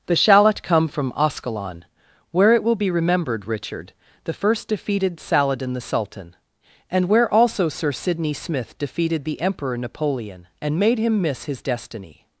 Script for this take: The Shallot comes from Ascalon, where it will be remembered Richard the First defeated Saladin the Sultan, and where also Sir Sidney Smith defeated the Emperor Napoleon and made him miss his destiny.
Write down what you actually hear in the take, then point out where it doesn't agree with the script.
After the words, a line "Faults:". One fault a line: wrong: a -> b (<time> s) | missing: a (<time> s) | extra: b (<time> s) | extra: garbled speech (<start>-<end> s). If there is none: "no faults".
The Shallot come from Ascalon, where it will be remembered Richard the First defeated Saladin the Sultan, and where also Sir Sidney Smith defeated the Emperor Napoleon and made him miss his destiny.
Faults:
wrong: comes -> come (0.6 s)